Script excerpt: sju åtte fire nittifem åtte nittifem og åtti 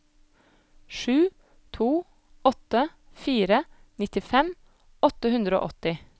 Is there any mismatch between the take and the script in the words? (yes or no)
yes